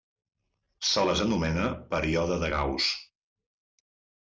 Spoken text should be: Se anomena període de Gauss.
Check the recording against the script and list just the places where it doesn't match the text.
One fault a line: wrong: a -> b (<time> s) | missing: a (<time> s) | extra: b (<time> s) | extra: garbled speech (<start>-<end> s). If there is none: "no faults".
extra: les (1.1 s)